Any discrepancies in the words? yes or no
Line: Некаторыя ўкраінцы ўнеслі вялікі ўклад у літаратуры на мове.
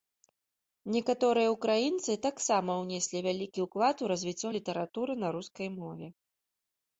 yes